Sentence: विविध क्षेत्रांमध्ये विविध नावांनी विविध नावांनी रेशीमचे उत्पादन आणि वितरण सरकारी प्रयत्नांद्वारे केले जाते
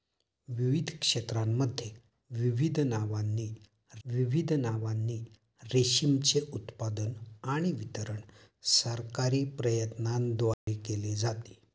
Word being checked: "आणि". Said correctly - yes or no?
yes